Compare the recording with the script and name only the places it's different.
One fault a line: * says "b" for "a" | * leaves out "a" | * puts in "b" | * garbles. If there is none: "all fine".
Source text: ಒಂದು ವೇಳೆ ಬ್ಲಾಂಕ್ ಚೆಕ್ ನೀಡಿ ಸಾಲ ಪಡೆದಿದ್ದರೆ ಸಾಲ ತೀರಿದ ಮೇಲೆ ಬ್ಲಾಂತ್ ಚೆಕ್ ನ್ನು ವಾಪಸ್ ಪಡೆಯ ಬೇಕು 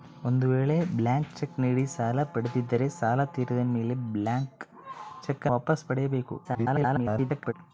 * leaves out "ನ್ನು"
* garbles